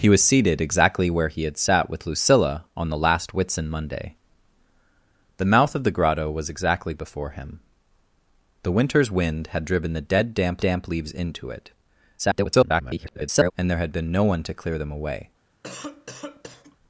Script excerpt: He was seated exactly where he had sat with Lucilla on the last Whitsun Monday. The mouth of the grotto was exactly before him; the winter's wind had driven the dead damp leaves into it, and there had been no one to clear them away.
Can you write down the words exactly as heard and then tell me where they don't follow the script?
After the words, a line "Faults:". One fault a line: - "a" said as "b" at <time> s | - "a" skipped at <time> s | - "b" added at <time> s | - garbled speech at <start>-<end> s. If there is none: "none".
He was seated exactly where he had sat with Lucilla on the last Whitsun Monday. The mouth of the grotto was exactly before him; the winter's wind had driven the dead damp damp leaves into it, [garbled] and there had been no one to clear them away.
Faults:
- "damp" added at 10.6 s
- garbled speech at 12.2-13.5 s